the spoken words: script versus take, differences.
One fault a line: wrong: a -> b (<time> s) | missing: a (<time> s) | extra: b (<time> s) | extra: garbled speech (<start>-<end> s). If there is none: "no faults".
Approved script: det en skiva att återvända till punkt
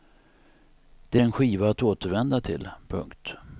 no faults